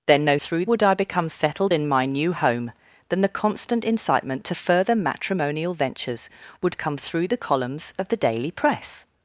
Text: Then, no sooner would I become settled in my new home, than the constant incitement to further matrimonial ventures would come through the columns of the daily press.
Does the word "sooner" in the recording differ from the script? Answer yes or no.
yes